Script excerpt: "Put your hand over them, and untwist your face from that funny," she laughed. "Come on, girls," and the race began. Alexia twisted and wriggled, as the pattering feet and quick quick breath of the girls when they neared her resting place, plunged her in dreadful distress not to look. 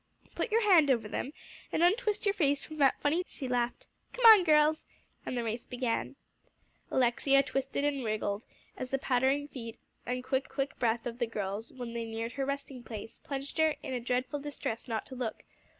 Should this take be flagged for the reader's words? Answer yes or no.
no